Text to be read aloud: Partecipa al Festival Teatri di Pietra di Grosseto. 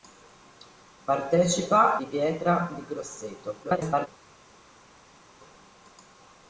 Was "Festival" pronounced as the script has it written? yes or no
no